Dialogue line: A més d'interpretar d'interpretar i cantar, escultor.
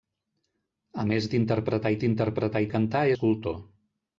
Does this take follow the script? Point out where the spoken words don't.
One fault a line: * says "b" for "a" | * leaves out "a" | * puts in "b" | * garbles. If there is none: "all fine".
all fine